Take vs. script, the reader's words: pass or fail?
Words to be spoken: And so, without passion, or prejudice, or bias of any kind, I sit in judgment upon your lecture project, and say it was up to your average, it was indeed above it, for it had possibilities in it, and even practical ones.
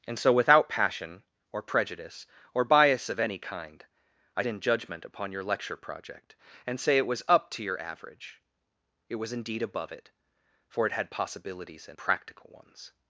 fail